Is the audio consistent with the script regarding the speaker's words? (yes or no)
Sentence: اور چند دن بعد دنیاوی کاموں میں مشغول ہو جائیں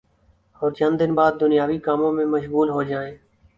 yes